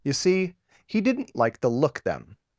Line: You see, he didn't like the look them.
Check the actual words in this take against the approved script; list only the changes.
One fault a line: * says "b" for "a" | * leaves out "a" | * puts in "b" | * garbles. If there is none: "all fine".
all fine